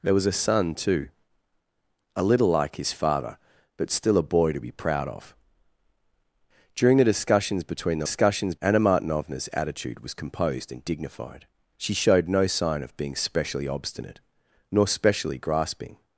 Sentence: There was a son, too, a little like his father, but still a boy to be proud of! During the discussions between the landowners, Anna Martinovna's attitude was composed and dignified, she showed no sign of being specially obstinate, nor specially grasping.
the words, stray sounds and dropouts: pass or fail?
fail